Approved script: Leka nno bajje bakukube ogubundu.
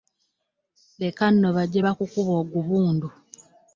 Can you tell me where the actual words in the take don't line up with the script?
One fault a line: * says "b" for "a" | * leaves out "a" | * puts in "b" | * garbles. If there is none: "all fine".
all fine